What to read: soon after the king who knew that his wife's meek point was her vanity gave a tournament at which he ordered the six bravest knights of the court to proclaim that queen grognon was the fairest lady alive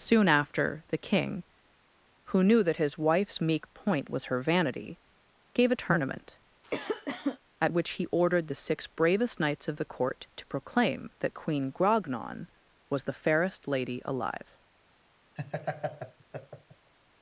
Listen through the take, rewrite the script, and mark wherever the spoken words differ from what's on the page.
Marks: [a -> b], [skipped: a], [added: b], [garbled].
soon after the king who knew that his wife's meek point was her vanity gave a tournament at which he ordered the six bravest knights of the court to proclaim that queen grognon was the fairest lady alive